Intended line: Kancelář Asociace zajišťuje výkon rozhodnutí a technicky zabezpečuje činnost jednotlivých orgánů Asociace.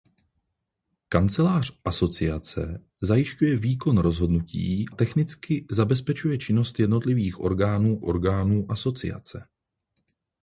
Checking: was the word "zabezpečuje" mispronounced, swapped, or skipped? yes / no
no